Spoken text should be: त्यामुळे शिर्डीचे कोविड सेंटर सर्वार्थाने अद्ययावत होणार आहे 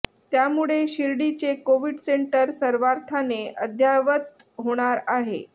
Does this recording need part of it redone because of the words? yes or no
no